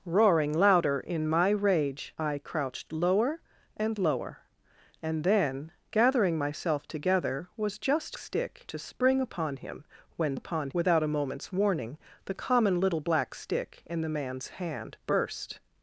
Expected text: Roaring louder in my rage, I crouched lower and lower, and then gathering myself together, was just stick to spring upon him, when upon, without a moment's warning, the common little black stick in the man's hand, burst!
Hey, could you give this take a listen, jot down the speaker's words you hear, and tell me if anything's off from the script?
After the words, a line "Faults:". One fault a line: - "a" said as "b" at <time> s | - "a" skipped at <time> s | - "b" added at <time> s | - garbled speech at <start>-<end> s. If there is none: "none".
Roaring louder in my rage, I crouched lower and lower, and then gathering myself together, was just stick to spring upon him, when upon, without a moment's warning, the common little black stick in the man's hand, burst!
Faults:
none